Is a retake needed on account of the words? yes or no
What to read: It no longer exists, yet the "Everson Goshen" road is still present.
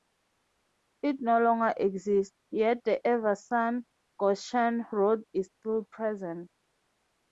no